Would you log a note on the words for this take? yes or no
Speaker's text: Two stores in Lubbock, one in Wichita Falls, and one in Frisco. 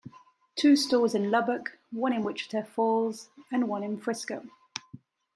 no